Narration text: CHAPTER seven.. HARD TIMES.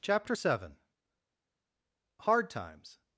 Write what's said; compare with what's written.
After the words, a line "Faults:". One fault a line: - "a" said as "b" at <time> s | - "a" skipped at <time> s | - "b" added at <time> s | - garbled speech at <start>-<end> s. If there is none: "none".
CHAPTER seven.. HARD TIMES.
Faults:
none